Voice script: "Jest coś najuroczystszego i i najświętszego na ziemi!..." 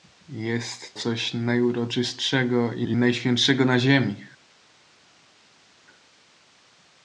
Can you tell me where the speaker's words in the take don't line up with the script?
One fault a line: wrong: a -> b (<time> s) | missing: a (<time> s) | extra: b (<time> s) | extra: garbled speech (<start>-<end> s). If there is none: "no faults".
no faults